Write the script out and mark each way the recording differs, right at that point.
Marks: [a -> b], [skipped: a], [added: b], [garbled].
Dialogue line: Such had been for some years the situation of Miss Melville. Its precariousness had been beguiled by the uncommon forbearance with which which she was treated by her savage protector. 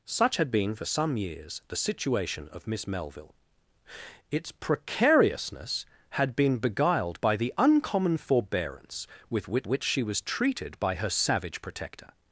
Such had been for some years the situation of Miss Melville. Its precariousness had been beguiled by the uncommon forbearance with which which she was treated by her savage protector.